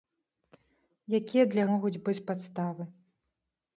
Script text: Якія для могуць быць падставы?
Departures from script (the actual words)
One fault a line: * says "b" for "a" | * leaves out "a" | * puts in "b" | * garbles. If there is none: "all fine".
all fine